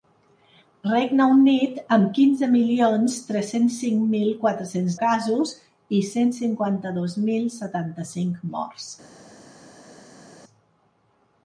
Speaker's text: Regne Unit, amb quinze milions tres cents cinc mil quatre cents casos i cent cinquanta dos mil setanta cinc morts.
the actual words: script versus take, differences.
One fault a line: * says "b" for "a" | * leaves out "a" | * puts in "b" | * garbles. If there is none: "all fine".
all fine